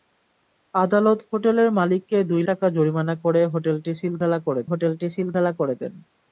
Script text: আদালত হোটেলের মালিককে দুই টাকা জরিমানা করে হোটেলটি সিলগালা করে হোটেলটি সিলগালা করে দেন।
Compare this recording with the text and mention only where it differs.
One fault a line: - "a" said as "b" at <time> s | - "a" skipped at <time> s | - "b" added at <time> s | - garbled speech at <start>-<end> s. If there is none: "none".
none